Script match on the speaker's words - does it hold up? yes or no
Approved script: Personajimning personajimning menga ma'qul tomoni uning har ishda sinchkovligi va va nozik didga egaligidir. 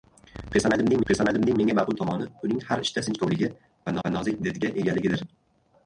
yes